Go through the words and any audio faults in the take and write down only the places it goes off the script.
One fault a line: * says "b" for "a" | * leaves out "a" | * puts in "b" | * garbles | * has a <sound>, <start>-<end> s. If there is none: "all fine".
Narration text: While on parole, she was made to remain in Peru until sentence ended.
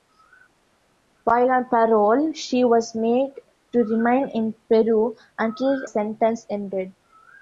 all fine